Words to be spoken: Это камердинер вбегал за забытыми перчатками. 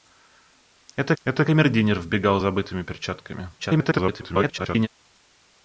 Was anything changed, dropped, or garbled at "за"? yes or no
yes